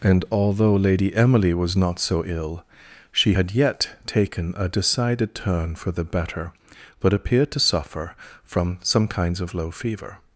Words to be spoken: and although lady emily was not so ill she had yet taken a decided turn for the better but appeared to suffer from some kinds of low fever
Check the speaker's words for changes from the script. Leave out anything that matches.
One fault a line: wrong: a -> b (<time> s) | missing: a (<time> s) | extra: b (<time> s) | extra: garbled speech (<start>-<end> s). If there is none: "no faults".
no faults